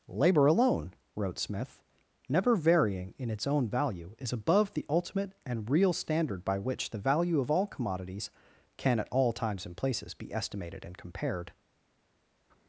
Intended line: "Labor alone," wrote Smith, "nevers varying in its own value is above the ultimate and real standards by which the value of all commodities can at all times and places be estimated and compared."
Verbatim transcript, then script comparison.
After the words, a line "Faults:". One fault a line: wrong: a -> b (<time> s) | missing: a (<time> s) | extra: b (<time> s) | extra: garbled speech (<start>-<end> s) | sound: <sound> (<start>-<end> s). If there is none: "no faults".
"Labor alone," wrote Smith, "never varying in its own value is above the ultimate and real standard by which the value of all commodities can at all times and places be estimated and compared."
Faults:
wrong: nevers -> never (2.3 s)
wrong: standards -> standard (5.9 s)